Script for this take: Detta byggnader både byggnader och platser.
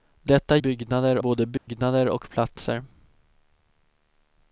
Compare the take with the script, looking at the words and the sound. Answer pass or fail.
fail